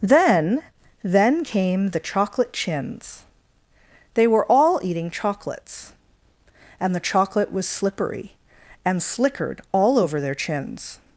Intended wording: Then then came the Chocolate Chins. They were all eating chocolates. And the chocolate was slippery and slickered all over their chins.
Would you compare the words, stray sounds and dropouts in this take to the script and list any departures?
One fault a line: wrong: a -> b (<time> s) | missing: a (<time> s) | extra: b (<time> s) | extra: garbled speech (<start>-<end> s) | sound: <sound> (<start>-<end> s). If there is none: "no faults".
no faults